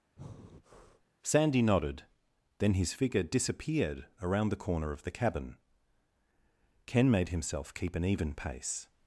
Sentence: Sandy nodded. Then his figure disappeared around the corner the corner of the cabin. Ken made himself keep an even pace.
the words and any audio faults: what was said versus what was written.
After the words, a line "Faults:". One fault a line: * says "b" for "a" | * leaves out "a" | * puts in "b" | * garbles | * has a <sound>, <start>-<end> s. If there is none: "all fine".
Sandy nodded. Then his figure disappeared around the corner of the cabin. Ken made himself keep an even pace.
Faults:
* has a breath, 0.2-1.1 s
* leaves out "the corner"